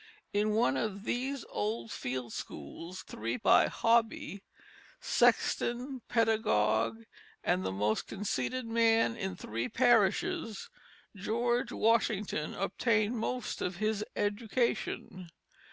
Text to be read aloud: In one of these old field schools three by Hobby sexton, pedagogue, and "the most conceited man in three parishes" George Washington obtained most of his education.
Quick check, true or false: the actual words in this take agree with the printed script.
true